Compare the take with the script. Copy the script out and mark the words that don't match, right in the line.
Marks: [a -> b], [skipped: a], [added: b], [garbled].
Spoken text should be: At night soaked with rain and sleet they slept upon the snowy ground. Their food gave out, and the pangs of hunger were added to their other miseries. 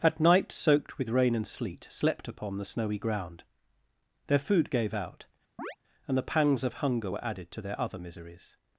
At night soaked with rain and sleet [skipped: they] slept upon the snowy ground. Their food gave out, and the pangs of hunger were added to their other miseries.